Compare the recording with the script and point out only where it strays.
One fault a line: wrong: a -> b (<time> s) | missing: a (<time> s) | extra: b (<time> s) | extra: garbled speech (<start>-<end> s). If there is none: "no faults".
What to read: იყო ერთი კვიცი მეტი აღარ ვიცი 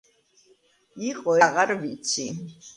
missing: ერთი კვიცი მეტი (1.4 s)